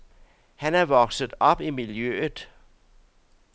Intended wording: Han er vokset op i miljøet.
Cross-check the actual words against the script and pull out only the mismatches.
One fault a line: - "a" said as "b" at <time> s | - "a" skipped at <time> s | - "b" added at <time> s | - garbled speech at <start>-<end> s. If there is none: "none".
none